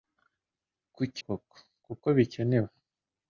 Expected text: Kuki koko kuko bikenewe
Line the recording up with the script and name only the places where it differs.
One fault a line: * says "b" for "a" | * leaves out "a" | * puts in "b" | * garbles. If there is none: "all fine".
all fine